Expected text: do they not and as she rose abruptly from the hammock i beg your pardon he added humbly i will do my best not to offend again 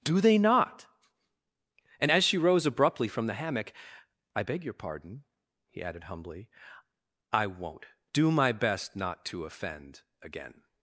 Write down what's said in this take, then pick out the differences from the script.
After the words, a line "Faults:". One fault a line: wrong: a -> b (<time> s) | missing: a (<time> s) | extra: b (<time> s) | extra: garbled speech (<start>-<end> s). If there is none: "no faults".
do they not and as she rose abruptly from the hammock i beg your pardon he added humbly i won't do my best not to offend again
Faults:
wrong: will -> won't (7.5 s)